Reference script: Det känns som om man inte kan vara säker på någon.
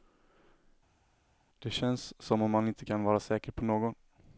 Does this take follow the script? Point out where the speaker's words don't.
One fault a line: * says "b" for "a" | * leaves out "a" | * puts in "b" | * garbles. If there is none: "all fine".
all fine